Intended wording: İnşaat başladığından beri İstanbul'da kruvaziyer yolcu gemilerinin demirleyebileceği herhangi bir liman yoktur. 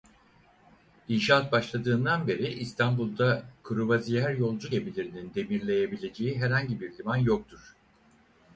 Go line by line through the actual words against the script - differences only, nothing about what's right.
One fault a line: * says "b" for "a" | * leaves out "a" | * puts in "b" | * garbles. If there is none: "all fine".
all fine